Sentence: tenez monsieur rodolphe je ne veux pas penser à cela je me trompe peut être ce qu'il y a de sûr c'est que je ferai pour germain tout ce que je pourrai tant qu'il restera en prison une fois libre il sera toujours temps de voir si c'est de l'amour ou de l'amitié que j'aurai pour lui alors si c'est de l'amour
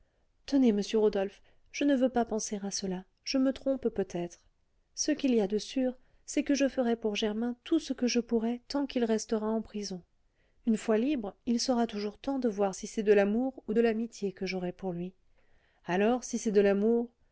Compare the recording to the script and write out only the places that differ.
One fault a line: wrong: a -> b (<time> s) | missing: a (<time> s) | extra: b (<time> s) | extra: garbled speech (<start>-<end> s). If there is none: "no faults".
no faults